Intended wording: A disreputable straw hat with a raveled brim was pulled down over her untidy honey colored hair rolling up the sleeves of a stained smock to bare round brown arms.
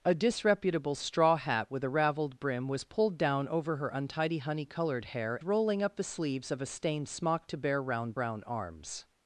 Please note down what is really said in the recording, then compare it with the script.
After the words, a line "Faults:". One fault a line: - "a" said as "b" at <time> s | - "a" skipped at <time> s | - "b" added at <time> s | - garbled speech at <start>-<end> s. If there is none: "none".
A disreputable straw hat with a raveled brim was pulled down over her untidy honey colored hair rolling up the sleeves of a stained smock to bare round brown arms.
Faults:
none